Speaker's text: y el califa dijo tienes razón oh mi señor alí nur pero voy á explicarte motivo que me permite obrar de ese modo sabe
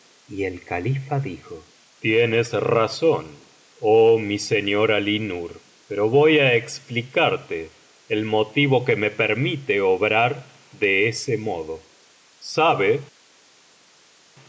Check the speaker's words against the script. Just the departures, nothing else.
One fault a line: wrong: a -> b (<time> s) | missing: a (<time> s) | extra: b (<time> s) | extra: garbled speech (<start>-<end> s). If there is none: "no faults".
extra: el (8.1 s)